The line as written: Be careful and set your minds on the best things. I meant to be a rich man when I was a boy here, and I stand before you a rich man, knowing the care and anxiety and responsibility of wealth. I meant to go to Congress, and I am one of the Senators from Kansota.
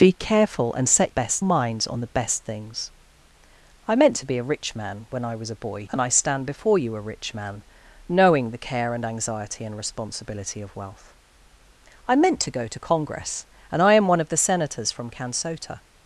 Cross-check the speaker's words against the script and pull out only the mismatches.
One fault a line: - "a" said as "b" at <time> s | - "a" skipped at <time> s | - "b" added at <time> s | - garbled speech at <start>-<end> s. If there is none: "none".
- "your" said as "best" at 1.1 s
- "here" skipped at 5.9 s